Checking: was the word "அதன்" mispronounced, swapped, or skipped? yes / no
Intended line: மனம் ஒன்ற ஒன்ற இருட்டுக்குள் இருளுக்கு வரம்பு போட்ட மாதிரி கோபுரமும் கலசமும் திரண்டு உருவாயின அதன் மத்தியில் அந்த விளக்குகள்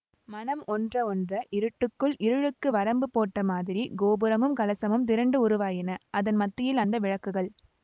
no